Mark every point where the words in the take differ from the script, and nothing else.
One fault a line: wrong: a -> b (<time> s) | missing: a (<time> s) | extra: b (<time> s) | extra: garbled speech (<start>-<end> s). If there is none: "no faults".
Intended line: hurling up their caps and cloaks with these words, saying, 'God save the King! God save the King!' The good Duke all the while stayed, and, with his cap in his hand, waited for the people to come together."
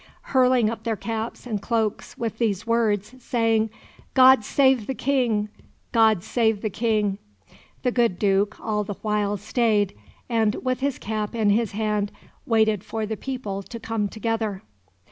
no faults